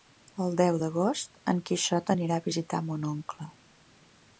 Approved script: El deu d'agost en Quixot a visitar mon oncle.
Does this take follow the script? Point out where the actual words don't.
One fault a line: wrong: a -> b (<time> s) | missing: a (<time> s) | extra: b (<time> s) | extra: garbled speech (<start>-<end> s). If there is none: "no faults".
extra: anirà (2.1 s)